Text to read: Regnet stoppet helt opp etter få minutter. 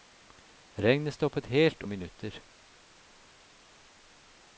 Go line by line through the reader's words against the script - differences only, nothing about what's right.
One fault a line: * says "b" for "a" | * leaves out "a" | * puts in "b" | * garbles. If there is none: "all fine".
* leaves out "opp etter få"